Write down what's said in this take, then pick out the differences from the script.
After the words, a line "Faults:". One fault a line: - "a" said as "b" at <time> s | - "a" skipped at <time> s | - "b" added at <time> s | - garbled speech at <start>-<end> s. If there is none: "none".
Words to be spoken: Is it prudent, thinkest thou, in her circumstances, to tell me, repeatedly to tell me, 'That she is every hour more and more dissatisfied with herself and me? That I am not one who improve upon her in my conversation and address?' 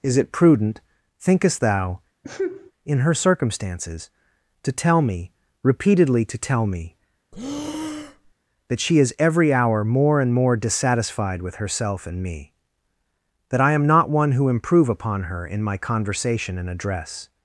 Is it prudent, thinkest thou, in her circumstances, to tell me, repeatedly to tell me, 'That she is every hour more and more dissatisfied with herself and me? That I am not one who improve upon her in my conversation and address?'
Faults:
none